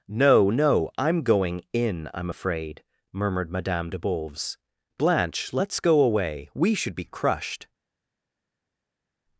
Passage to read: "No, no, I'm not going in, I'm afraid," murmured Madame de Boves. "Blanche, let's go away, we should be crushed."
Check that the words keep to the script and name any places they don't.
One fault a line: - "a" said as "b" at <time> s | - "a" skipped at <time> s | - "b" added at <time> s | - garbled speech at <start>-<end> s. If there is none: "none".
- "not" skipped at 1.2 s